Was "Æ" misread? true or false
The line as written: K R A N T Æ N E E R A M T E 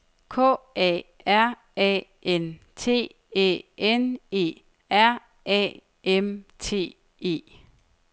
false